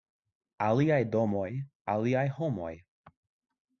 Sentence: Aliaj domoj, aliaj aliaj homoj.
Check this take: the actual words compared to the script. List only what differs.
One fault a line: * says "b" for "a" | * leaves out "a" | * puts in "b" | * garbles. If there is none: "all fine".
* leaves out "aliaj"